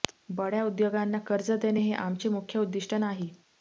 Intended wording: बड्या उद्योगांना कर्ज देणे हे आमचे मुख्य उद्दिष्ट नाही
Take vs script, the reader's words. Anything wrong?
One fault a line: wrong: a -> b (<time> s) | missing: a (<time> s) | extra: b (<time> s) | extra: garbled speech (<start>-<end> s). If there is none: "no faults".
no faults